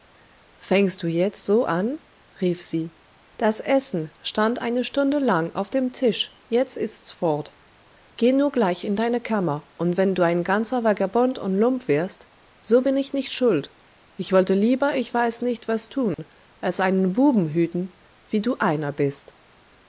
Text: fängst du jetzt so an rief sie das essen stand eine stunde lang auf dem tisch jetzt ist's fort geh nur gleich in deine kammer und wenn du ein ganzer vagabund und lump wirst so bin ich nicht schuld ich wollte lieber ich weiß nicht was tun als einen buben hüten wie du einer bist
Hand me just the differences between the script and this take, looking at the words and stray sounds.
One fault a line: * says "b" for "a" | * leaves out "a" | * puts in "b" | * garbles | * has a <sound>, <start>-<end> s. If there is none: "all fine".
* has a dropout, 16.1-16.2 s